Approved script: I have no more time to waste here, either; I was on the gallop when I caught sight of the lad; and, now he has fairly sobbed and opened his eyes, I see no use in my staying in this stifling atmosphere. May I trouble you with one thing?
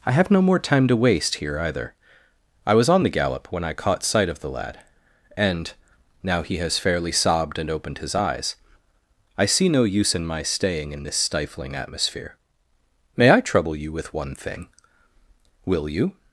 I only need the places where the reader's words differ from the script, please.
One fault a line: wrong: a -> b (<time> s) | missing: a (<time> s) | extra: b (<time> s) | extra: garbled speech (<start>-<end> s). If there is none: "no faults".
extra: Will you (15.7 s)